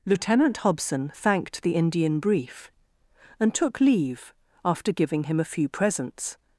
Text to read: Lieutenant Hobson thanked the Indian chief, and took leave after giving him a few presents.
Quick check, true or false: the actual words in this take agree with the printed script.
false